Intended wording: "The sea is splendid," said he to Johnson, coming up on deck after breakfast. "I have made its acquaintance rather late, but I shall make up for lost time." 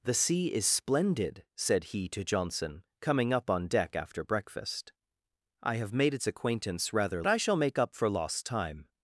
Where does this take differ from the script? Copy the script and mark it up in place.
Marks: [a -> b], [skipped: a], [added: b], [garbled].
"The sea is splendid," said he to Johnson, coming up on deck after breakfast. "I have made its acquaintance rather [skipped: late, but] I shall make up for lost time."